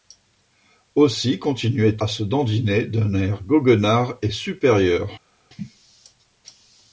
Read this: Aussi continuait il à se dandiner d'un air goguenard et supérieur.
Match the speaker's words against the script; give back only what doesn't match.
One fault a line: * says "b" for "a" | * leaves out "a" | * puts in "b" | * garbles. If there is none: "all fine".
* leaves out "il"